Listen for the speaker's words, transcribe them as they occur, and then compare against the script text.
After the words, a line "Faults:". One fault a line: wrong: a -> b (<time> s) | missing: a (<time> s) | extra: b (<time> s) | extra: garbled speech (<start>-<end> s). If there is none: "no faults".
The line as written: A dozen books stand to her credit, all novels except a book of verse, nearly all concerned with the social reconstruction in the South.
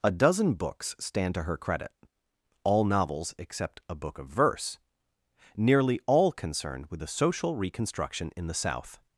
A dozen books stand to her credit, all novels except a book of verse, nearly all concerned with the social reconstruction in the South.
Faults:
no faults